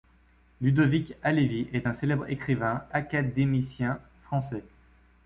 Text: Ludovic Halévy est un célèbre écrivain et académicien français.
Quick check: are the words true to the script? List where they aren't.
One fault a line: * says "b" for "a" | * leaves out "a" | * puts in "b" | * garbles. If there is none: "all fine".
* leaves out "et"